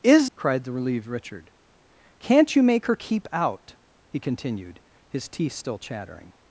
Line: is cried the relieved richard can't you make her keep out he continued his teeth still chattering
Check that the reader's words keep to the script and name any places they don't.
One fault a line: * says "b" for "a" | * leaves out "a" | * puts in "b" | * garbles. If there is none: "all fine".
all fine